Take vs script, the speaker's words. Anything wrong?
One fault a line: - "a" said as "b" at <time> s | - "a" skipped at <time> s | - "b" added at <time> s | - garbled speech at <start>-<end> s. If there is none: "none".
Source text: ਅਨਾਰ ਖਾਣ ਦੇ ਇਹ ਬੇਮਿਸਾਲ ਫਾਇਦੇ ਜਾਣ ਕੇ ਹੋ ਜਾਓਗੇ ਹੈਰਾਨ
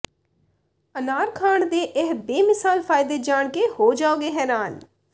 none